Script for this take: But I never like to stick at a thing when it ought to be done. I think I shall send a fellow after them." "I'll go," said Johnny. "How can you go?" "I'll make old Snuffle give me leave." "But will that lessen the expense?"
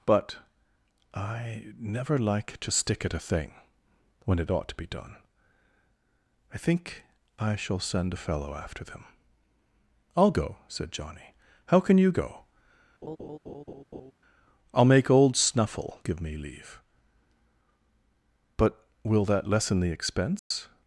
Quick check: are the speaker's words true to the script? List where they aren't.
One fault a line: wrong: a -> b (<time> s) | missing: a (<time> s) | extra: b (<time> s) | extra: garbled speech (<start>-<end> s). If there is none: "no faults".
no faults